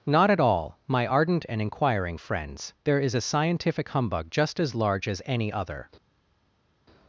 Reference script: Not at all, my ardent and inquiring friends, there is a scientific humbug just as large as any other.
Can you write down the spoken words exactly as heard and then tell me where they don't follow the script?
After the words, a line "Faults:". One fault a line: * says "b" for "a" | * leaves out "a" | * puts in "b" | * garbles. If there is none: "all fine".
Not at all, my ardent and inquiring friends, there is a scientific humbug just as large as any other.
Faults:
all fine